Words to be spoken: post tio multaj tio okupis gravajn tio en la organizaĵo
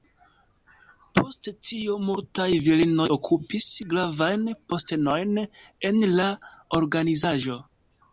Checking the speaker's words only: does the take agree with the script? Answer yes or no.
no